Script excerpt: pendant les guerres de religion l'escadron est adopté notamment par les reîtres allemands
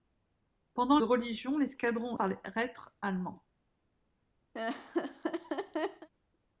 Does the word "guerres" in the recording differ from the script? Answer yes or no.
yes